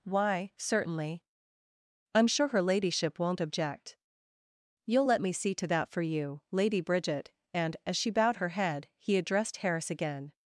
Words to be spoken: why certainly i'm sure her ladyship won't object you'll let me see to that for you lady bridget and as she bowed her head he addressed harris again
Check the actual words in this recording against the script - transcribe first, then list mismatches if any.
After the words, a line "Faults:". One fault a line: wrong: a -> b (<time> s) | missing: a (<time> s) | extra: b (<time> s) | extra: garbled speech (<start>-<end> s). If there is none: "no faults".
why certainly i'm sure her ladyship won't object you'll let me see to that for you lady bridget and as she bowed her head he addressed harris again
Faults:
no faults